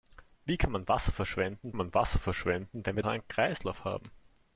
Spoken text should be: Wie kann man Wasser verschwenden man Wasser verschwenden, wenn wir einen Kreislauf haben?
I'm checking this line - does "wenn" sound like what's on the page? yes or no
yes